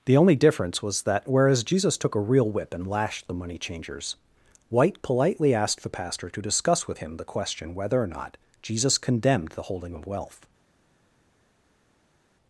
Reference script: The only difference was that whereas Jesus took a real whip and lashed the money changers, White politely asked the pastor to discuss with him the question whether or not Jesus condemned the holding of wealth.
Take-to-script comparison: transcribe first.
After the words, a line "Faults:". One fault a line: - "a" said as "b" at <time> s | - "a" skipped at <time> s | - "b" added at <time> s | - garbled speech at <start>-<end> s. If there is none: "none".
The only difference was that whereas Jesus took a real whip and lashed the money changers, White politely asked the pastor to discuss with him the question whether or not Jesus condemned the holding of wealth.
Faults:
none